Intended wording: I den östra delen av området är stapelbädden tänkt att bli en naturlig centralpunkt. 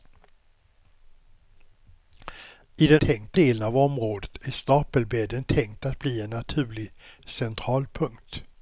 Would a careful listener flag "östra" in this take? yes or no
yes